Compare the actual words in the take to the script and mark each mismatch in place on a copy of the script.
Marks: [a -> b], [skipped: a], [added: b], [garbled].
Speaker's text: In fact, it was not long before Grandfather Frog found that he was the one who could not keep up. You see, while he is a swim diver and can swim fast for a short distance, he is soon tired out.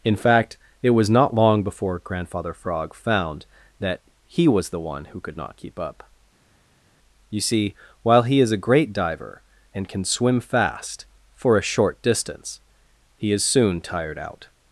In fact, it was not long before Grandfather Frog found that he was the one who could not keep up. You see, while he is a [swim -> great] diver and can swim fast for a short distance, he is soon tired out.